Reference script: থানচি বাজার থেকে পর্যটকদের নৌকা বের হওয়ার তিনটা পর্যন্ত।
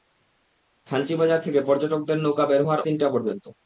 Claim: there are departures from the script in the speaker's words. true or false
false